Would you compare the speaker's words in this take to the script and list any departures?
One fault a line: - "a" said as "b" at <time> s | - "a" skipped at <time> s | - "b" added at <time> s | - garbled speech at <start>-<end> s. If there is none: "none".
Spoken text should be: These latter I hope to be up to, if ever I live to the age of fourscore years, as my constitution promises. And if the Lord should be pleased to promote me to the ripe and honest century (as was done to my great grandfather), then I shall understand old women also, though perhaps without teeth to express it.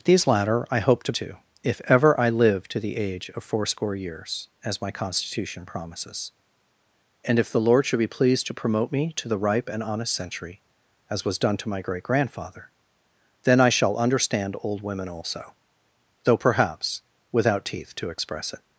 - "be up" skipped at 1.1 s